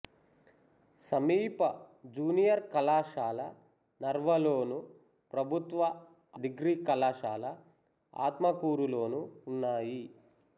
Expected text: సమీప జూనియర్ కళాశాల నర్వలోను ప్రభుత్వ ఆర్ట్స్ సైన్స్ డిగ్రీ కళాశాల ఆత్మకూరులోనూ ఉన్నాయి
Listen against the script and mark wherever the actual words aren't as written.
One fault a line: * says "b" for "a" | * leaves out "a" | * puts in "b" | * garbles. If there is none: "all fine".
* leaves out "ఆర్ట్స్ సైన్స్"